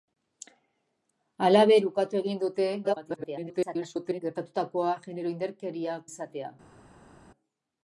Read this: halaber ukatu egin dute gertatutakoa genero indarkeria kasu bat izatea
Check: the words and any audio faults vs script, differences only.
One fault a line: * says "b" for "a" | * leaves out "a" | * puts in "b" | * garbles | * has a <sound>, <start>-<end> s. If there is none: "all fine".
* garbles
* leaves out "kasu bat"